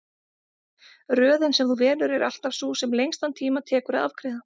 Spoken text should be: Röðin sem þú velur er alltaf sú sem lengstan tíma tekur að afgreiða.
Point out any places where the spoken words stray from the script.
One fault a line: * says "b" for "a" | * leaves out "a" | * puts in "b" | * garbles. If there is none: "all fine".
all fine